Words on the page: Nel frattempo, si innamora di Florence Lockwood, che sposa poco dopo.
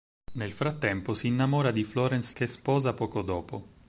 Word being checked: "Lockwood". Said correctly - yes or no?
no